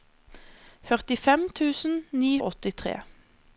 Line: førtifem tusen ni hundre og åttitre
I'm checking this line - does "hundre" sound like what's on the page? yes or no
no